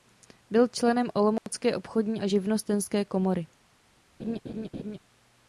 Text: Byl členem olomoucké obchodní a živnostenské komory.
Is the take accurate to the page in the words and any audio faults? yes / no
no